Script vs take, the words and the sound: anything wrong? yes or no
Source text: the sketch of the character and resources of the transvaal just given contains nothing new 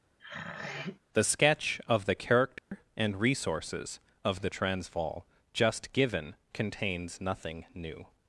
yes